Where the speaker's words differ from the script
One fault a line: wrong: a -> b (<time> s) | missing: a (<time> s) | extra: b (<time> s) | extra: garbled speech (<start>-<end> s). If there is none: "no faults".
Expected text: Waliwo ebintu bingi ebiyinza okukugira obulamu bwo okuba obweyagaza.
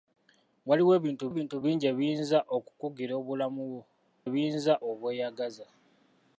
extra: ebintu (1.3 s)
wrong: okuba -> ebiyinza (4.3 s)